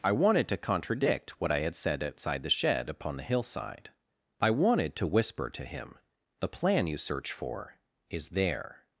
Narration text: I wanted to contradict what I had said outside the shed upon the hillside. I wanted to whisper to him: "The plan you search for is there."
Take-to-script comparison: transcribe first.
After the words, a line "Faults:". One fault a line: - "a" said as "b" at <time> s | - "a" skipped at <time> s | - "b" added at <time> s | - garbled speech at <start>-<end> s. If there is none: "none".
I wanted to contradict what I had said outside the shed upon the hillside. I wanted to whisper to him: "The plan you search for is there."
Faults:
none